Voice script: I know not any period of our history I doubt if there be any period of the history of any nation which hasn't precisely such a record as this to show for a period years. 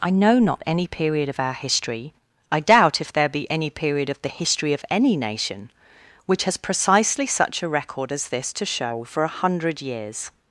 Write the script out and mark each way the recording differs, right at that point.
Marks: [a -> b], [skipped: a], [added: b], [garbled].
I know not any period of our history I doubt if there be any period of the history of any nation which [hasn't -> has] precisely such a record as this to show for a [period -> hundred] years.